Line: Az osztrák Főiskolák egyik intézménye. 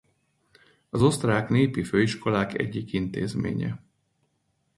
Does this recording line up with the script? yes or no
no